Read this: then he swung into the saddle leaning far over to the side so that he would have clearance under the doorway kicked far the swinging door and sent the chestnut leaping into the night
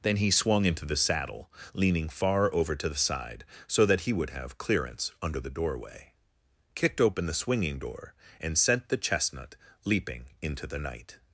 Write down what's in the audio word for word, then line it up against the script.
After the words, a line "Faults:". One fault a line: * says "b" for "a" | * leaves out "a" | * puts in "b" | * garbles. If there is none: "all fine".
then he swung into the saddle leaning far over to the side so that he would have clearance under the doorway kicked open the swinging door and sent the chestnut leaping into the night
Faults:
* says "open" for "far"